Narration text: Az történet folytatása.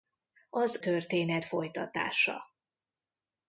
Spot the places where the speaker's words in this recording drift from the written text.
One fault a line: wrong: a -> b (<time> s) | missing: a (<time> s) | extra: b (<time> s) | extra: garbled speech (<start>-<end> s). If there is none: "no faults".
no faults